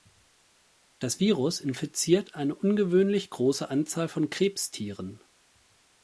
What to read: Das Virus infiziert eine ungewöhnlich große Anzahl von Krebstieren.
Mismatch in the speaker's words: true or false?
false